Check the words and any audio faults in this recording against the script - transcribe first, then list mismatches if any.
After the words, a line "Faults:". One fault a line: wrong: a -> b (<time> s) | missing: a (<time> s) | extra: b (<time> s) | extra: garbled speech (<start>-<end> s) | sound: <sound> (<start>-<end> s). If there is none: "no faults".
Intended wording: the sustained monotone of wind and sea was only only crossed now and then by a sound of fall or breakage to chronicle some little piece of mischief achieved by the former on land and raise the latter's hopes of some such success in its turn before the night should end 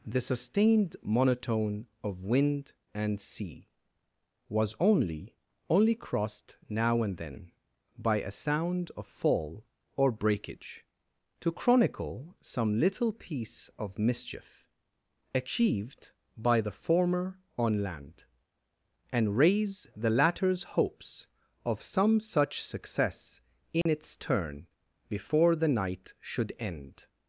the sustained monotone of wind and sea was only only crossed now and then by a sound of fall or breakage to chronicle some little piece of mischief achieved by the former on land and raise the latter's hopes of some such success in its turn before the night should end
Faults:
sound: dropout (23.8-23.9 s)